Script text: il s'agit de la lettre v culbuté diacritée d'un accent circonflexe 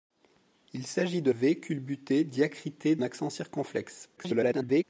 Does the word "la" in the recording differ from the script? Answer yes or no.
yes